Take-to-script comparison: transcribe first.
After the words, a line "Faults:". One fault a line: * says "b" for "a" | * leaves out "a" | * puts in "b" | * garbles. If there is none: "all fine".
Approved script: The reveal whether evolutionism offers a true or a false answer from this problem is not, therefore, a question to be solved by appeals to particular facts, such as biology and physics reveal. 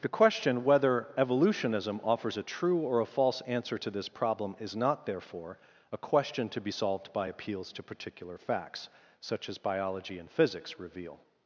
The question whether evolutionism offers a true or a false answer to this problem is not, therefore, a question to be solved by appeals to particular facts, such as biology and physics reveal.
Faults:
* says "question" for "reveal"
* says "to" for "from"